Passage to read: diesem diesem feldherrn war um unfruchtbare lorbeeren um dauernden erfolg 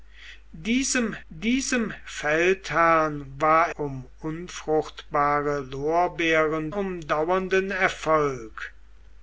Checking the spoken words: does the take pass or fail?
pass